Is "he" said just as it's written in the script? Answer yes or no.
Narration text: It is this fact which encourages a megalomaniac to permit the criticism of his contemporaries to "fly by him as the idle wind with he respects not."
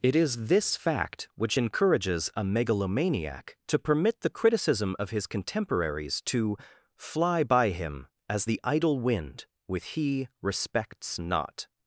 yes